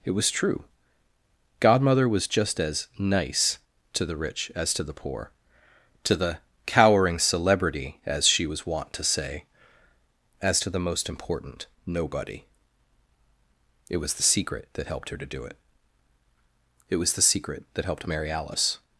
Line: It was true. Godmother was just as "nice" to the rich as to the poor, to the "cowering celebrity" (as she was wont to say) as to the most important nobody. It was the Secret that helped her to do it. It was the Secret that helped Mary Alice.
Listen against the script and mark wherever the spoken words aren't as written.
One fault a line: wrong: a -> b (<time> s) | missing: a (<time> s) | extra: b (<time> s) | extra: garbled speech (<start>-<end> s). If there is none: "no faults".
no faults